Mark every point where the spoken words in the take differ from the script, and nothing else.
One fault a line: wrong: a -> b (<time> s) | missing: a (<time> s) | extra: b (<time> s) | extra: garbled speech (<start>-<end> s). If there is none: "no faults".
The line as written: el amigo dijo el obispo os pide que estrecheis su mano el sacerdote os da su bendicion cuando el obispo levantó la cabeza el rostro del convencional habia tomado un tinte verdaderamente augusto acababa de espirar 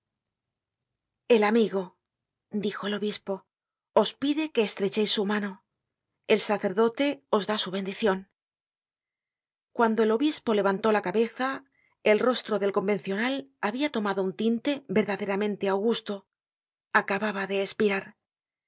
no faults